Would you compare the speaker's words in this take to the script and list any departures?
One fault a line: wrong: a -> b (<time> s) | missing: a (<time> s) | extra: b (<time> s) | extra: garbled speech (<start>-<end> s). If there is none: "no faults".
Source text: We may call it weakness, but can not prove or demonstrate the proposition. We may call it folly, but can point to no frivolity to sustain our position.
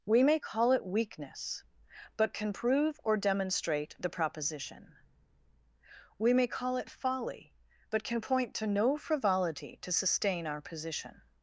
missing: not (2.5 s)